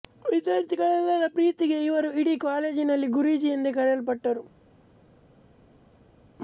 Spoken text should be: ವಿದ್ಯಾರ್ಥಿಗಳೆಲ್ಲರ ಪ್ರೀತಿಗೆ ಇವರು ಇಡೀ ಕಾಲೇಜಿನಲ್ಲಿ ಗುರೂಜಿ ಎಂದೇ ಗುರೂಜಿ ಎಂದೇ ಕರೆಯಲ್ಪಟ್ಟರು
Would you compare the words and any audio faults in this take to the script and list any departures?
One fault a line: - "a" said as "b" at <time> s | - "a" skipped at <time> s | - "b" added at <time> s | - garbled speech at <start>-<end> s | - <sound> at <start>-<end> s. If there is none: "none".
- "ಗುರೂಜಿ ಎಂದೇ" skipped at 3.7 s